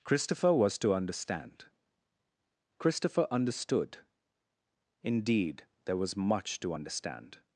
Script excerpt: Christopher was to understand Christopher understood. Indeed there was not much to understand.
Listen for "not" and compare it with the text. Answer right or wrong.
wrong